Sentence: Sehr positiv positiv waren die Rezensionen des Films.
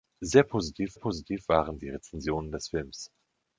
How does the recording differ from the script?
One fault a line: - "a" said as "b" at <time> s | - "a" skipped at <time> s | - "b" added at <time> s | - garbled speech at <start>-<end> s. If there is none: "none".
none